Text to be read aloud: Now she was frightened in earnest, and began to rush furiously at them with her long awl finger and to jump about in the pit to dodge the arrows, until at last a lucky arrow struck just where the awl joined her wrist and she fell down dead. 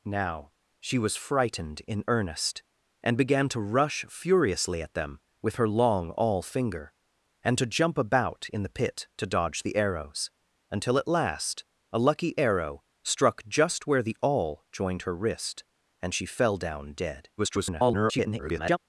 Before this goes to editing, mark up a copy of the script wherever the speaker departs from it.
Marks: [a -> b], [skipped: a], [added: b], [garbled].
Now she was frightened in earnest, and began to rush furiously at them with her long awl finger and to jump about in the pit to dodge the arrows, until at last a lucky arrow struck just where the awl joined her wrist and she fell down dead. [garbled]